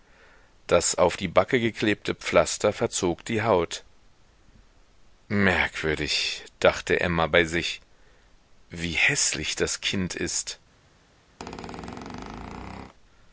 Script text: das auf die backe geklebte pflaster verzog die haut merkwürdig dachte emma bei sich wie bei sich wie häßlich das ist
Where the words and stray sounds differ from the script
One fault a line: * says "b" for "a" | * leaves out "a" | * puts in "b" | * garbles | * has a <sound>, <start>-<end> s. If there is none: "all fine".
* leaves out "bei sich wie"
* puts in "kind"
* has a squeak, 11.4-12.9 s